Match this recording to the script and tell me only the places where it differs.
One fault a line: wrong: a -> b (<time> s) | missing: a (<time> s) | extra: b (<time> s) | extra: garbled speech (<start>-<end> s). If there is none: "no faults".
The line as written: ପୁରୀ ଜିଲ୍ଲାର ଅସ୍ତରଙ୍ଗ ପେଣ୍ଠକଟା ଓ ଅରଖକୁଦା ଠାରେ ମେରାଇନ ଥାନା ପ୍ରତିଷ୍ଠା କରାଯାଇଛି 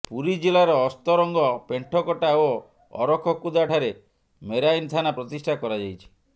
no faults